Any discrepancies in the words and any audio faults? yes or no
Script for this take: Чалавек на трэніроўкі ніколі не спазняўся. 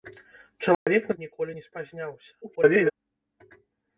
yes